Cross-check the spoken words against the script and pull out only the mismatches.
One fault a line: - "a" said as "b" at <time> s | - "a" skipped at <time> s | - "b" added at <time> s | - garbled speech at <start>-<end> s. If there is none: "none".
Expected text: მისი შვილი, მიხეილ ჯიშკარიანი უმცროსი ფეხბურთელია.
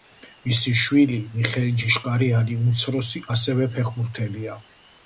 - "ასევე" added at 3.4 s